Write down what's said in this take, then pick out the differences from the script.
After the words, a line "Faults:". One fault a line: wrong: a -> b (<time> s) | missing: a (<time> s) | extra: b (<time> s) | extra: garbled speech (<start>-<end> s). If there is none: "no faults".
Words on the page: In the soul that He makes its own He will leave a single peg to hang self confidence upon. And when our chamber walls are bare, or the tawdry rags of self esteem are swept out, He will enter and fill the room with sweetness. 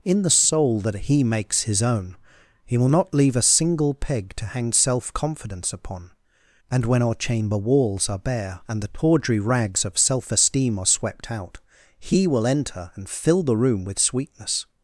In the soul that He makes his own He will not leave a single peg to hang self confidence upon. And when our chamber walls are bare, and the tawdry rags of self esteem are swept out, He will enter and fill the room with sweetness.
Faults:
wrong: its -> his (1.6 s)
extra: not (2.9 s)
wrong: or -> and (8.7 s)